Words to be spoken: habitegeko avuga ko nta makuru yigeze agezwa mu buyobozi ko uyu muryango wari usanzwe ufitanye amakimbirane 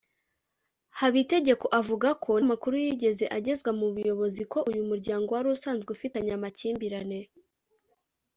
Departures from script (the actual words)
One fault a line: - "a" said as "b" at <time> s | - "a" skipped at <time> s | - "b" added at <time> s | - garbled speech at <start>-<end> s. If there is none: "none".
- "nta" skipped at 2.3 s